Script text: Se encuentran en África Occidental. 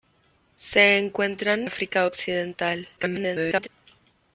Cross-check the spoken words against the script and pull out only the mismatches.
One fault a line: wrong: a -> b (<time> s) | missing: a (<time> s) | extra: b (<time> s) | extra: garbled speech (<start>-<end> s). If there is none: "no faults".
missing: en (1.7 s)
extra: garbled speech (3.0-3.7 s)